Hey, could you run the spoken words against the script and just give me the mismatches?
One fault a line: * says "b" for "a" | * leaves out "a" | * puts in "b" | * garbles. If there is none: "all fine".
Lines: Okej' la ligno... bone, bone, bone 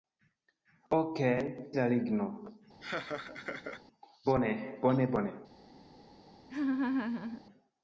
all fine